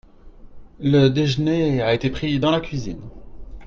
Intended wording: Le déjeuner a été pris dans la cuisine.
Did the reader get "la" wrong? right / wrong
right